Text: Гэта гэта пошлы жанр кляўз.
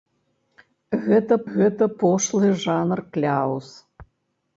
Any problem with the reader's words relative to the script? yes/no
no